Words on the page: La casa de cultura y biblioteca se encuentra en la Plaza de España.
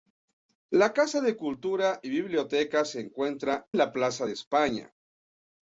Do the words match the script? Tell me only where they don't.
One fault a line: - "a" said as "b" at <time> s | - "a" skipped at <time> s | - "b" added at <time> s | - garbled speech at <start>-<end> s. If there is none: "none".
- "en" skipped at 3.7 s